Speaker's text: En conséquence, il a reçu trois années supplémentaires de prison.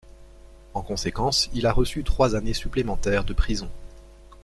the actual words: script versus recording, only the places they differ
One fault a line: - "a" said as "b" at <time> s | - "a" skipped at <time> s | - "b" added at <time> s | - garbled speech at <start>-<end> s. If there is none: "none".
none